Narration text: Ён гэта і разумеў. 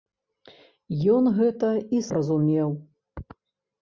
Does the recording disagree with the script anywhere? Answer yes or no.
no